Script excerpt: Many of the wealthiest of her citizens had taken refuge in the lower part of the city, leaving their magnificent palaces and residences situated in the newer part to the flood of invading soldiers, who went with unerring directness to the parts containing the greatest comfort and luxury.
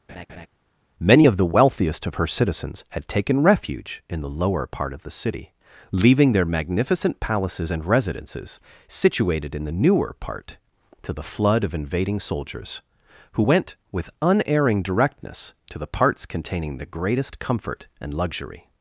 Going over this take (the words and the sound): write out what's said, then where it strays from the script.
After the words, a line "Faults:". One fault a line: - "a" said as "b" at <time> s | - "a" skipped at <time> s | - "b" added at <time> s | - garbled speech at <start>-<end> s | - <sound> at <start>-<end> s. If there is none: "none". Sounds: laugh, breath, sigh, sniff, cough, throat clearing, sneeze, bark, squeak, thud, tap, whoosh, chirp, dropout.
Many of the wealthiest of her citizens had taken refuge in the lower part of the city, leaving their magnificent palaces and residences situated in the newer part to the flood of invading soldiers, who went with unerring directness to the parts containing the greatest comfort and luxury.
Faults:
- laugh at 0.1-0.5 s